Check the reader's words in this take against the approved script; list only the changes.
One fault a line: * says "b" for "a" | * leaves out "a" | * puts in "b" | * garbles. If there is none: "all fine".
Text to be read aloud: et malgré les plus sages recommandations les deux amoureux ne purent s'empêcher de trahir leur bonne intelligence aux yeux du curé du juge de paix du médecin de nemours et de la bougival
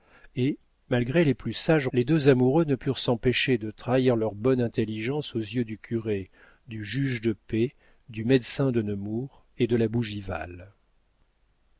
* leaves out "recommandations"